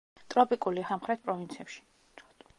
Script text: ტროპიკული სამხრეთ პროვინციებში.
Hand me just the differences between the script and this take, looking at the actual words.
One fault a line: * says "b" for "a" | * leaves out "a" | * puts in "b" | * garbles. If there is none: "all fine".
all fine